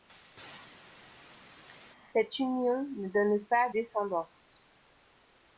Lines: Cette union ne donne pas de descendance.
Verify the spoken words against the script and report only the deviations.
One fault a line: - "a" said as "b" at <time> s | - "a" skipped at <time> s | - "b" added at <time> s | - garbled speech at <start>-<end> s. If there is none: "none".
- "de" skipped at 3.7 s